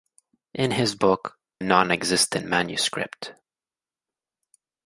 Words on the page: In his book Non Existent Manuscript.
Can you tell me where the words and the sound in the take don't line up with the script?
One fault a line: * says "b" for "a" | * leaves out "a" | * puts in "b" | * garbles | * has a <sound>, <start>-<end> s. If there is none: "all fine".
all fine